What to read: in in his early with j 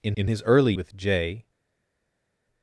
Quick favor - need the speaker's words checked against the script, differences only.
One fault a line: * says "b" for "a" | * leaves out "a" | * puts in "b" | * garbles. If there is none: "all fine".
all fine